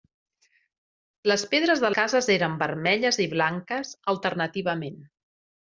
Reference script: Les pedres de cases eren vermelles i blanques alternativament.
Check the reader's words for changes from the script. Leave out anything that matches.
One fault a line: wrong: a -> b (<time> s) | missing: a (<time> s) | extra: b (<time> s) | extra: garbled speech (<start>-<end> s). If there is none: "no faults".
no faults